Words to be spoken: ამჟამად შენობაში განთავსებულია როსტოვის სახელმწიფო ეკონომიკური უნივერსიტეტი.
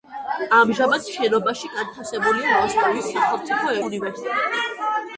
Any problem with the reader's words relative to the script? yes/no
yes